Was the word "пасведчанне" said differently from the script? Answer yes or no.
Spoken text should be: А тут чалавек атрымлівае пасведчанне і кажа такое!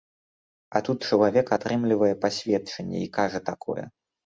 no